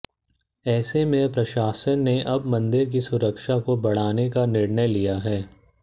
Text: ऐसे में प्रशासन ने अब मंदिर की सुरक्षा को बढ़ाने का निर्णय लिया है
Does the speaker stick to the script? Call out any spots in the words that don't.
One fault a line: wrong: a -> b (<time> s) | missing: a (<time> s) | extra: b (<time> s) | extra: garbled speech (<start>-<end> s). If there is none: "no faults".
no faults